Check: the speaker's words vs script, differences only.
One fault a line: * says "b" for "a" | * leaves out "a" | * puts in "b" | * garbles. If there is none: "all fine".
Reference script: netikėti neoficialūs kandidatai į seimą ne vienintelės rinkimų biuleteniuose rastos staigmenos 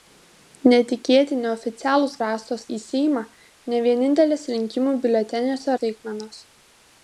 * says "rastos" for "kandidatai"
* leaves out "rastos"